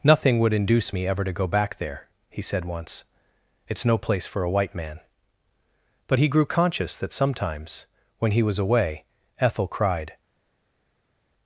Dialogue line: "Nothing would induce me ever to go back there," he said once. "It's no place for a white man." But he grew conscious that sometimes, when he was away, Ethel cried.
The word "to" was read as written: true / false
true